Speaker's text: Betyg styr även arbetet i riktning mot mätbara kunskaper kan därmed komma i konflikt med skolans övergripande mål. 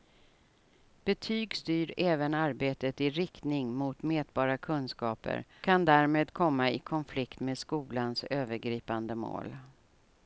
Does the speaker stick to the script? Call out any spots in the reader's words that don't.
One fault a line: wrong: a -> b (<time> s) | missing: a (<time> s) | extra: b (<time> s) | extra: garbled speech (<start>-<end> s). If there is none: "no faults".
no faults